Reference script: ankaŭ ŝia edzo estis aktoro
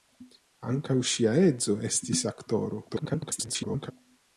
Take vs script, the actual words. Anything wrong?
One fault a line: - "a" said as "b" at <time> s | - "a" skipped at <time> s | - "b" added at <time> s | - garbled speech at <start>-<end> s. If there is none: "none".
- garbled speech at 2.9-3.9 s